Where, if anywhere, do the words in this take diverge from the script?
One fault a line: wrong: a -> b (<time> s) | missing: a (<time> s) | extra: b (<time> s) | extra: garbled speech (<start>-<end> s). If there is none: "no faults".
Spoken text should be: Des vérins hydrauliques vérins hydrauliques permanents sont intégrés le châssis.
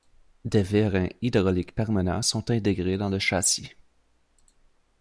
missing: vérins hydrauliques (1.8 s)
extra: dans (3.0 s)